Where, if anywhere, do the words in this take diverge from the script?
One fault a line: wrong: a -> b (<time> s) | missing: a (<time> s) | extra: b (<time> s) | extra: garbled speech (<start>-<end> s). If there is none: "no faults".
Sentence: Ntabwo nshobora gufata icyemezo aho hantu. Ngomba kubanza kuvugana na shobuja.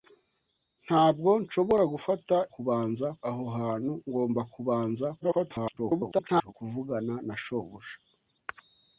wrong: icyemezo -> kubanza (2.5 s)
extra: garbled speech (5.2-6.5 s)